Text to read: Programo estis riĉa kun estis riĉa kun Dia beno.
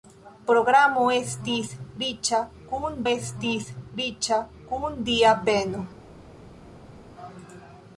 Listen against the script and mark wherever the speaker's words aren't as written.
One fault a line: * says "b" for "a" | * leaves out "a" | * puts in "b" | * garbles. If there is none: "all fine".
all fine